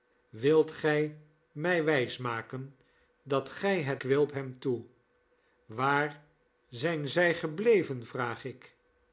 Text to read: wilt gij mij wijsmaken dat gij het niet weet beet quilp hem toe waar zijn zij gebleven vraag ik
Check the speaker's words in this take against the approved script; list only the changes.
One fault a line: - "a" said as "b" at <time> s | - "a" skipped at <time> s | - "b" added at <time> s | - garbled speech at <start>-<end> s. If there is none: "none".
- "niet weet beet" skipped at 4.0 s